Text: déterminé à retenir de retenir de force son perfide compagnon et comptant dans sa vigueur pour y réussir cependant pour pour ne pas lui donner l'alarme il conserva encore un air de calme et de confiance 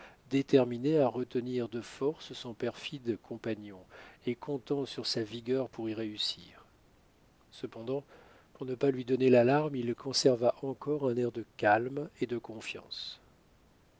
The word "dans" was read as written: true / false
false